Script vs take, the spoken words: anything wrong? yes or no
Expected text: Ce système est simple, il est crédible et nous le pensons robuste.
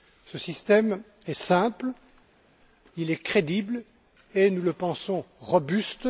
no